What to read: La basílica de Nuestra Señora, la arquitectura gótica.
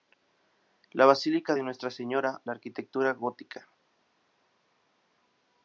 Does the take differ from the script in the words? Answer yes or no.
no